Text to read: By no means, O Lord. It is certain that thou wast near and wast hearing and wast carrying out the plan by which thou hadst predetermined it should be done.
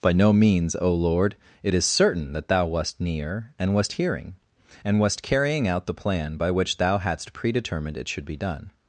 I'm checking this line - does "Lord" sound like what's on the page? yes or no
yes